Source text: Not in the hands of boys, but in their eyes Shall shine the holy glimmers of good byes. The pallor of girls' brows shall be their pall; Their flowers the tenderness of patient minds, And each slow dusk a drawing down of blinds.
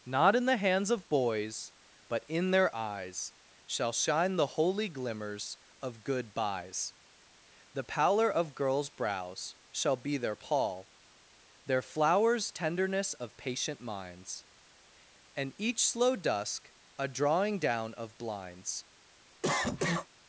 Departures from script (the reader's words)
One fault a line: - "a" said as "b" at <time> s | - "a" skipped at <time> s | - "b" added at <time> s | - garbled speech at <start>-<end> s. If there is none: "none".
- "the" skipped at 12.5 s